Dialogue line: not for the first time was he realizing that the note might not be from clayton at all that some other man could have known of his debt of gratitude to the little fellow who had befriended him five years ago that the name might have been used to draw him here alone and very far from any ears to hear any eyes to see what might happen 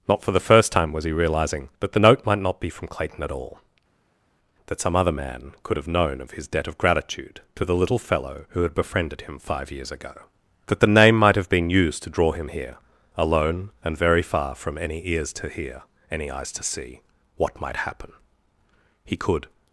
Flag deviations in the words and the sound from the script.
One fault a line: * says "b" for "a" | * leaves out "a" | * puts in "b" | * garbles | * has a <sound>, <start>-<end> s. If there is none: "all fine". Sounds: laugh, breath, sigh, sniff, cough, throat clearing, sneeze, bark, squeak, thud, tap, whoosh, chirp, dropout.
* puts in "he could"